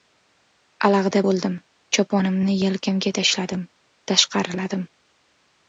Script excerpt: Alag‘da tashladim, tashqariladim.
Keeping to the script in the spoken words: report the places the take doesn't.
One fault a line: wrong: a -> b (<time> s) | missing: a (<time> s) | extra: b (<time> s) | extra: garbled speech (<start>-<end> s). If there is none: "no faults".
extra: bo‘ldim choponimni yelkamga (1.2 s)